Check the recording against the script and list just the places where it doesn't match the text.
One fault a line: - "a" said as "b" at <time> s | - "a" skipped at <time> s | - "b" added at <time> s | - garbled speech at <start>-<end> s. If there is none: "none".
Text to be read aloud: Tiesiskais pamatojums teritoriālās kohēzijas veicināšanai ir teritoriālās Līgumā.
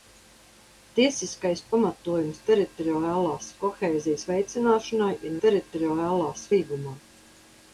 none